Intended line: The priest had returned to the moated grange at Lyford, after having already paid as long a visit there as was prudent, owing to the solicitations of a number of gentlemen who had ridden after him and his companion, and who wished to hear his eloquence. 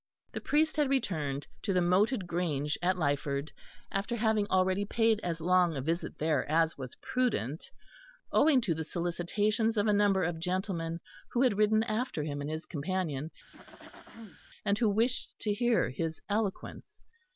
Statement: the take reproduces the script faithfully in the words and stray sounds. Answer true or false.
false